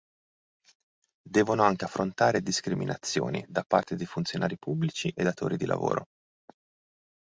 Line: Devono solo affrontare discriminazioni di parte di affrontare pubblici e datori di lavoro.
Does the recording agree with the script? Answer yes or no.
no